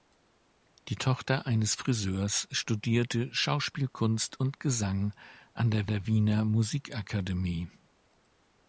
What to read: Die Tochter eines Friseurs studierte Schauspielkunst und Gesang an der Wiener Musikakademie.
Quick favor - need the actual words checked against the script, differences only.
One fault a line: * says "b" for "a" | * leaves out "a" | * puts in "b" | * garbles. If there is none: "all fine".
* puts in "der"